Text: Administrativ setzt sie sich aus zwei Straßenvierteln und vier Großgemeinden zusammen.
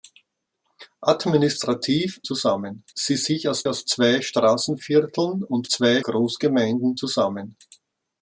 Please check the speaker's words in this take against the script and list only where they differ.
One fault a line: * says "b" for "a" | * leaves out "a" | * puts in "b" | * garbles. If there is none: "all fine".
* says "zusammen" for "setzt"
* puts in "aus"
* says "zwei" for "vier"